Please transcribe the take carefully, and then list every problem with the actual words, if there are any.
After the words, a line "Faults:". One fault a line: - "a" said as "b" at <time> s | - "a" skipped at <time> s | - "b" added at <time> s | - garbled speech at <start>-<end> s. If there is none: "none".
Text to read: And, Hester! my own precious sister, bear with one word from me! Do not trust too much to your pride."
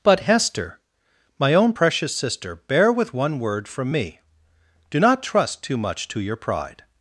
But, Hester! my own precious sister, bear with one word from me! Do not trust too much to your pride."
Faults:
- "And" said as "But" at 0.0 s